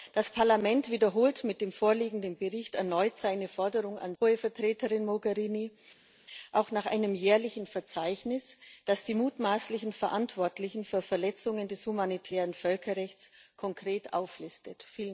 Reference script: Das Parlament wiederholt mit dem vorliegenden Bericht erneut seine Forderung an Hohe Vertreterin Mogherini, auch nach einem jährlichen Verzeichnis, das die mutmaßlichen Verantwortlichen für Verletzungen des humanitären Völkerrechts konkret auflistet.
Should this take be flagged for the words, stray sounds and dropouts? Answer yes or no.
no